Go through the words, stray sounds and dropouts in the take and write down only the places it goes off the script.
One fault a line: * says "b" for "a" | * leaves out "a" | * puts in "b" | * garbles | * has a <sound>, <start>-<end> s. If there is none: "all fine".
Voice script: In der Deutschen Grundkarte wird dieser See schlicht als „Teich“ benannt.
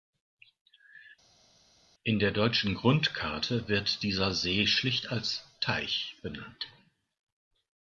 all fine